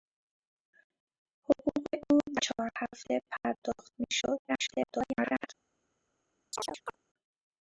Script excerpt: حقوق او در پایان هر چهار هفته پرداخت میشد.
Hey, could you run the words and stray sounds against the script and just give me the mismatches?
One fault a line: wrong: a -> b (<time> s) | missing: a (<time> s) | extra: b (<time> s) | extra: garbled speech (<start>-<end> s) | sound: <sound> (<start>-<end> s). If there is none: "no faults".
missing: در پایان هر (2.2 s)
extra: garbled speech (4.5-5.5 s)
sound: chirp (6.5-7.0 s)